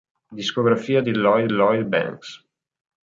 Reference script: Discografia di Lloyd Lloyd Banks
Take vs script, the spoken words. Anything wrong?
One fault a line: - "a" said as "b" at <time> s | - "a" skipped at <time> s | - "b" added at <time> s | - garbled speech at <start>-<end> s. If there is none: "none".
none